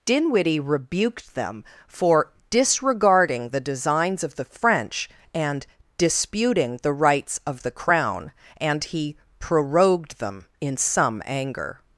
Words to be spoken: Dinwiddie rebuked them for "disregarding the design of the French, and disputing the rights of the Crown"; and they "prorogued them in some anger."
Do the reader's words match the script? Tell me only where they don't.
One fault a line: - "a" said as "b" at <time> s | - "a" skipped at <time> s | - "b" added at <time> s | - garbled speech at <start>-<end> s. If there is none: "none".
- "design" said as "designs" at 3.6 s
- "they" said as "he" at 8.8 s